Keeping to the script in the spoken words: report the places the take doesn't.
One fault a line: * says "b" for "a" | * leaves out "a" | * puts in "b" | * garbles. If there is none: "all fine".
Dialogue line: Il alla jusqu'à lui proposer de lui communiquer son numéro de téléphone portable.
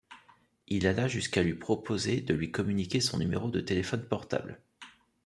all fine